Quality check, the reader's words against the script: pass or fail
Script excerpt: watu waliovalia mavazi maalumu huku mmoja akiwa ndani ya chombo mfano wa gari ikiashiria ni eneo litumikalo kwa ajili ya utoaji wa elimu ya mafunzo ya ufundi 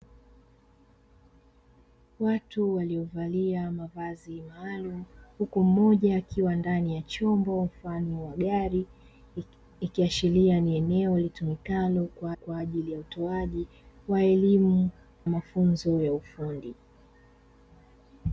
fail